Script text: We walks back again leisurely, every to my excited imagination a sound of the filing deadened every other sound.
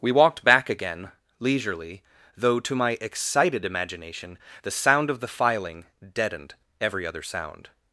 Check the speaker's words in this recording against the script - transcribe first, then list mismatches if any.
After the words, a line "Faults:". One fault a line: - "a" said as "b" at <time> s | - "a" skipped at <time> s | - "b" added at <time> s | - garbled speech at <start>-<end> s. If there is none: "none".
We walked back again leisurely, though to my excited imagination the sound of the filing deadened every other sound.
Faults:
- "walks" said as "walked" at 0.1 s
- "every" said as "though" at 2.4 s
- "a" said as "the" at 4.6 s